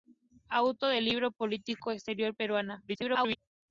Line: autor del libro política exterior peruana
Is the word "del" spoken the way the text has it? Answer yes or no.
yes